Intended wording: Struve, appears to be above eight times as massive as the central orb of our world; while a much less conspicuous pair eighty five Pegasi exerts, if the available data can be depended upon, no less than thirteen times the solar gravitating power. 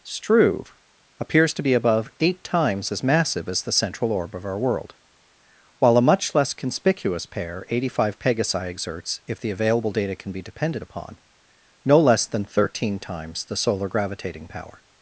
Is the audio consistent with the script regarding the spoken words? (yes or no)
yes